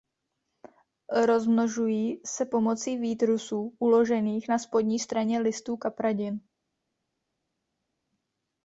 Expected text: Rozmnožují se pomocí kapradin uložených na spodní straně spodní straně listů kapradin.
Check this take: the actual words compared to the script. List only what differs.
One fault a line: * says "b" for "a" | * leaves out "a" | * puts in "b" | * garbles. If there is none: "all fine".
* says "výtrusů" for "kapradin"
* leaves out "spodní straně"